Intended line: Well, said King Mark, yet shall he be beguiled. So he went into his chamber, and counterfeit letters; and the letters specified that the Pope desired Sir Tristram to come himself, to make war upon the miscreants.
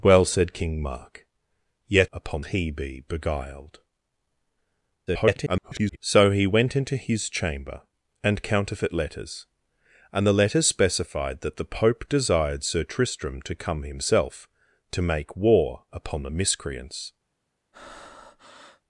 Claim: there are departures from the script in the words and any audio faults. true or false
true